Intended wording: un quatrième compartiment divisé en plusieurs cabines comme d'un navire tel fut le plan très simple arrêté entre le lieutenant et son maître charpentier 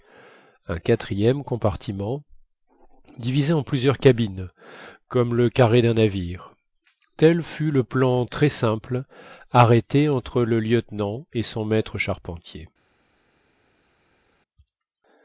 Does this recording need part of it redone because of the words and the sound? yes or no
yes